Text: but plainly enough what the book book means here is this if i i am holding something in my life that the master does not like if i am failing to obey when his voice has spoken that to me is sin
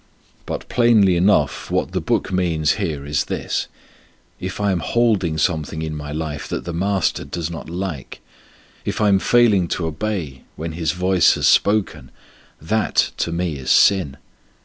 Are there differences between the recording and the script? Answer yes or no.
yes